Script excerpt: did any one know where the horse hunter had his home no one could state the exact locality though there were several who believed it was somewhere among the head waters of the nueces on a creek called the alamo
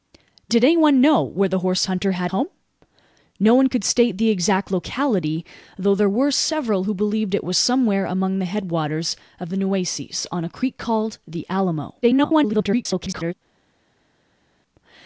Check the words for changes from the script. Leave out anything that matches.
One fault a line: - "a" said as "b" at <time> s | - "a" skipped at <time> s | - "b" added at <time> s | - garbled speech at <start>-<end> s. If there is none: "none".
- "his" skipped at 2.3 s
- garbled speech at 12.0-13.3 s